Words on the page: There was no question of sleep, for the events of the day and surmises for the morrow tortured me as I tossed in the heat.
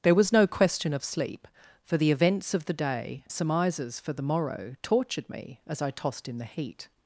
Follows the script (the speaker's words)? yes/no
no